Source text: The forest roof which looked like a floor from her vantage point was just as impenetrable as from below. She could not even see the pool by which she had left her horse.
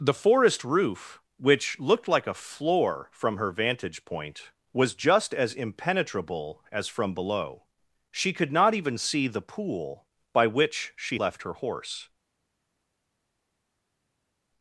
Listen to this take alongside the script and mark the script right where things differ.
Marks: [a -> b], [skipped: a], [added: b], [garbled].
The forest roof which looked like a floor from her vantage point was just as impenetrable as from below. She could not even see the pool by which she [skipped: had] left her horse.